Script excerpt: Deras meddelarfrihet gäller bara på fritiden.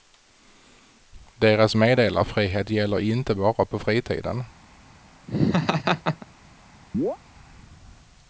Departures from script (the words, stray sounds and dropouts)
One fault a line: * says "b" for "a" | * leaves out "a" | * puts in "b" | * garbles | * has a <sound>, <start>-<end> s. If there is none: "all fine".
* puts in "inte"
* has a laugh, 5.3-6.3 s
* has a chirp, 6.9-7.2 s